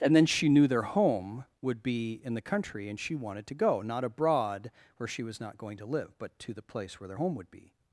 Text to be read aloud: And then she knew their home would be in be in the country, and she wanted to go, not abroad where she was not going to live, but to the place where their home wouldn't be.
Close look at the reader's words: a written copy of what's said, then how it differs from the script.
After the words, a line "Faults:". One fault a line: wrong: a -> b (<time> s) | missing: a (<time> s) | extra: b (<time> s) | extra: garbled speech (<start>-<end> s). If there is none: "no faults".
And then she knew their home would be in the country, and she wanted to go, not abroad where she was not going to live, but to the place where their home would be.
Faults:
missing: be in (2.3 s)
wrong: wouldn't -> would (7.3 s)